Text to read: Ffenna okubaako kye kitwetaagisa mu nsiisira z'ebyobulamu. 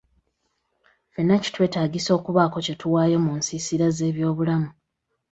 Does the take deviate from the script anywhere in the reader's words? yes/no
yes